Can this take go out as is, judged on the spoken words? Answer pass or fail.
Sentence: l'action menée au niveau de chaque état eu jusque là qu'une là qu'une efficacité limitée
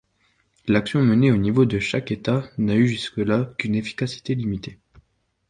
fail